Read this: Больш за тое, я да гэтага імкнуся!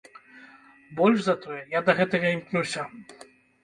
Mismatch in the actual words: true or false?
false